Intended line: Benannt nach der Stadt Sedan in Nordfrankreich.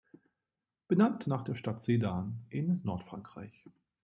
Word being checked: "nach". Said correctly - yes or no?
yes